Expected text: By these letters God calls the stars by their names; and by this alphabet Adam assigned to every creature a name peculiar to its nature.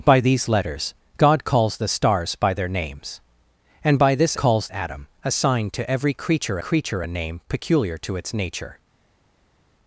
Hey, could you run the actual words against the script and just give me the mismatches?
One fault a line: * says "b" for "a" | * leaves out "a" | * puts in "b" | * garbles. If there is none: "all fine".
* says "calls" for "alphabet"
* puts in "creature"